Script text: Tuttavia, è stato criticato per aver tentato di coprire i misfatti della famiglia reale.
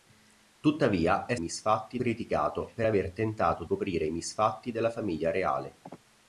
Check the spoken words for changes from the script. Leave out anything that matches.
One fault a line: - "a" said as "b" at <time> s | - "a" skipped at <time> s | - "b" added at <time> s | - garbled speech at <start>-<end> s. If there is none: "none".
- "stato" said as "misfatti" at 1.4 s
- "di" skipped at 3.6 s